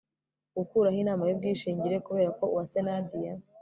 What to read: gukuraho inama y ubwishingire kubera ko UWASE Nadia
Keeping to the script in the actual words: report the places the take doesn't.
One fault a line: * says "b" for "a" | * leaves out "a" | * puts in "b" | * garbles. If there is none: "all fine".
all fine